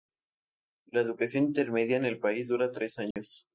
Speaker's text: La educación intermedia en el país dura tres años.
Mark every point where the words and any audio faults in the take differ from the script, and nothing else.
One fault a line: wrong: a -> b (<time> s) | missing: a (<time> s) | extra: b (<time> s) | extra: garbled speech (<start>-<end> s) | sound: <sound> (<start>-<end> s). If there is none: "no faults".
sound: dropout (3.1-3.2 s)